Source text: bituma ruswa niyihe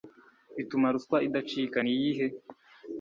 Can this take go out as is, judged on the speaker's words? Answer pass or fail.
fail